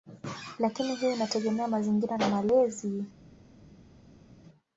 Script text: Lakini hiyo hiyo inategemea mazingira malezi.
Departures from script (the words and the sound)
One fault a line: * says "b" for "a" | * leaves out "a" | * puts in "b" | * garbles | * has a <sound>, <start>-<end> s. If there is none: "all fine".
* leaves out "hiyo"
* puts in "na"